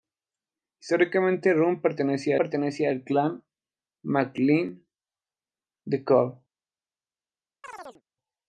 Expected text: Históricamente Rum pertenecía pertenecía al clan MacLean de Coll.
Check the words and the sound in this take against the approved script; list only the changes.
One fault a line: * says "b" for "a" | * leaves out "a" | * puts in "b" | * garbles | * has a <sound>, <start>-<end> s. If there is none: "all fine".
* has a chirp, 7.6-8.0 s